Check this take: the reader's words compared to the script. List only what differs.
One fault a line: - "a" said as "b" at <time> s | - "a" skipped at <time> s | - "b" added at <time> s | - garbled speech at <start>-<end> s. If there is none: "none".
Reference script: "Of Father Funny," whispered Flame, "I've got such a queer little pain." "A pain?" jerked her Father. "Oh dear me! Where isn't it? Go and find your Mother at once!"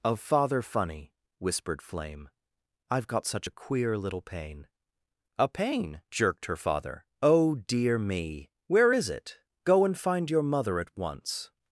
- "isn't" said as "is" at 8.9 s